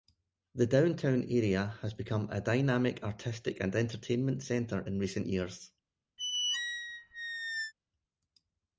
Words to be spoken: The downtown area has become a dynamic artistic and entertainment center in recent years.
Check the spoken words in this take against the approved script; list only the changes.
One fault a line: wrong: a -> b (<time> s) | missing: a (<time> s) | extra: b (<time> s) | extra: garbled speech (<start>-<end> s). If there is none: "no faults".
no faults